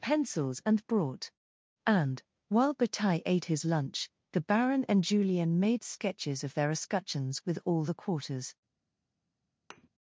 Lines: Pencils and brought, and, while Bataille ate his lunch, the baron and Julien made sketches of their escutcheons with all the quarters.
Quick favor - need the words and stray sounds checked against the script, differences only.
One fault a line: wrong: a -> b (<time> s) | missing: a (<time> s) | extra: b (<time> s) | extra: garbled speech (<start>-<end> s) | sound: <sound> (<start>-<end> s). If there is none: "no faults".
sound: thud (9.7-9.9 s)